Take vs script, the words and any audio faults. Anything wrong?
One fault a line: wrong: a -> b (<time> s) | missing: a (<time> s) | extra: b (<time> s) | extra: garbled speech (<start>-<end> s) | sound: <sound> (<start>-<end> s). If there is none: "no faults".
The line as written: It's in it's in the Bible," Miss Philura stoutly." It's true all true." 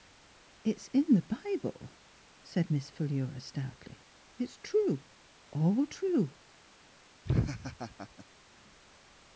missing: it's in (1.1 s)
extra: said (2.4 s)
sound: laugh (7.2-8.3 s)